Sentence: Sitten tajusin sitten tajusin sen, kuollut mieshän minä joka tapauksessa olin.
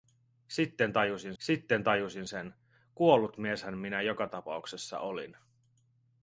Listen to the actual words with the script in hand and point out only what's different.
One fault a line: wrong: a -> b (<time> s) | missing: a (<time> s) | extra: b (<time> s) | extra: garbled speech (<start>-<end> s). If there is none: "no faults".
no faults